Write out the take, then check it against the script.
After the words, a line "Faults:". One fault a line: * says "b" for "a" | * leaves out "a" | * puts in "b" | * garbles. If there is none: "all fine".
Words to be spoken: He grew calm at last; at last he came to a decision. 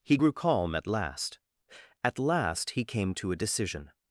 He grew calm at last; at last he came to a decision.
Faults:
all fine